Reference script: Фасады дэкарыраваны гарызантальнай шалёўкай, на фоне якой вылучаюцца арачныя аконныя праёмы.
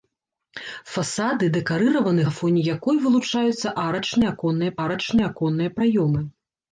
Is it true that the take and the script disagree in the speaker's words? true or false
true